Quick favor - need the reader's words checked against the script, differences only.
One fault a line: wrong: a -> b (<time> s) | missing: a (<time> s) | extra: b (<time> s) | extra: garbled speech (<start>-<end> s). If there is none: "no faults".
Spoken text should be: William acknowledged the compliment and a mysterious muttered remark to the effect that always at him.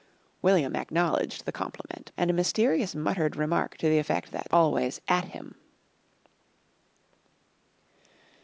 no faults